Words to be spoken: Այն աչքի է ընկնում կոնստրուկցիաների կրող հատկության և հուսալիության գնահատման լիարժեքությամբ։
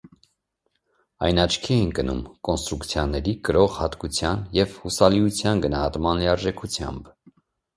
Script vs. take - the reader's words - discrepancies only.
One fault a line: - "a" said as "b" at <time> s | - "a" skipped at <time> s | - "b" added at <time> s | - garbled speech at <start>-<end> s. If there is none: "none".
none